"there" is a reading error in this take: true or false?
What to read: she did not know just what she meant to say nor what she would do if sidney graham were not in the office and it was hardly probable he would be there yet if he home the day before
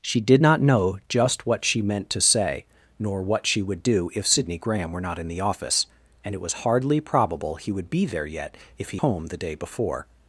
false